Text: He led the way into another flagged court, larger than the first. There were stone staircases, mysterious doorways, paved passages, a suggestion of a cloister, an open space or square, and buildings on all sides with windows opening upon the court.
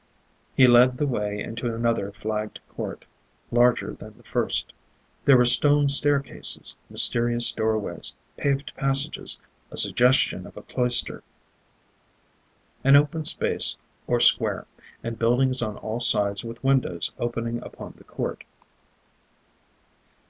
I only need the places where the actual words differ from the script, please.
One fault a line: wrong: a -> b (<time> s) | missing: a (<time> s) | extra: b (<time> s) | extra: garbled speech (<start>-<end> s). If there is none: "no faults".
no faults